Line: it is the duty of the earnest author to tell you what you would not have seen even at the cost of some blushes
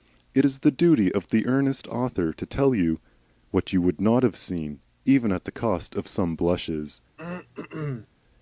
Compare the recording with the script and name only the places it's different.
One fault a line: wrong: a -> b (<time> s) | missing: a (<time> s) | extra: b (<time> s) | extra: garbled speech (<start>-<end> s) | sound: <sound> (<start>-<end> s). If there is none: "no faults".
sound: throat clearing (7.2-8.1 s)